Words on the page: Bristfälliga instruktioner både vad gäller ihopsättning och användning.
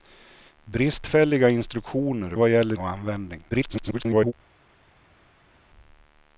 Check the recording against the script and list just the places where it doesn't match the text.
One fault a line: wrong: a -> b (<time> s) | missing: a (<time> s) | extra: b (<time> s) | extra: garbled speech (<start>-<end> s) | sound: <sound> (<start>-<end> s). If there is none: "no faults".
missing: både (2.4 s)
missing: ihopsättning (2.8 s)
extra: garbled speech (3.5-4.3 s)